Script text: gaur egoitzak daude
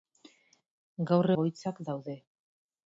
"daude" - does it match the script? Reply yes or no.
yes